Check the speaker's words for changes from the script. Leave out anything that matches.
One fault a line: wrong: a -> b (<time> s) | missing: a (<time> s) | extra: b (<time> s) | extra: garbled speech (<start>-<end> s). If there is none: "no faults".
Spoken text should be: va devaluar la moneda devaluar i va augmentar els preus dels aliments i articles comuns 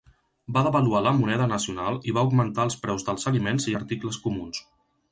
wrong: devaluar -> nacional (1.5 s)